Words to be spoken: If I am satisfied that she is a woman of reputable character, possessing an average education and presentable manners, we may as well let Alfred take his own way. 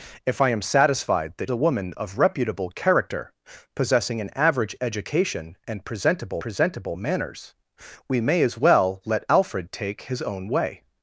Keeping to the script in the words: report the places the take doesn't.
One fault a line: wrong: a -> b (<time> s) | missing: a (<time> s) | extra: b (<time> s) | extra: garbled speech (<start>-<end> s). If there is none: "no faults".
missing: she is (1.5 s)
extra: presentable (6.4 s)